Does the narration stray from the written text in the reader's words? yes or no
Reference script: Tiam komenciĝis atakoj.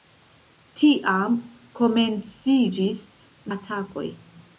no